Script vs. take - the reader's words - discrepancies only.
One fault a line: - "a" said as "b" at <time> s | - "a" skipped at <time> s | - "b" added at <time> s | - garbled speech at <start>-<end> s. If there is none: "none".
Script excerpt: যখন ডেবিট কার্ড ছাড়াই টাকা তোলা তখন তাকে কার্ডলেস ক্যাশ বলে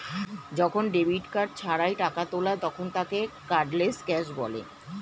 none